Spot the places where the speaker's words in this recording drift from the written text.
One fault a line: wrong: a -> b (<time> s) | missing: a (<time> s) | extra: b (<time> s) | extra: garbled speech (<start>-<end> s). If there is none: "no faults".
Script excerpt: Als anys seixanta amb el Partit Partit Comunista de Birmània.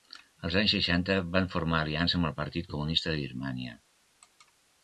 extra: van formar aliança (1.4 s)
missing: Partit (2.7 s)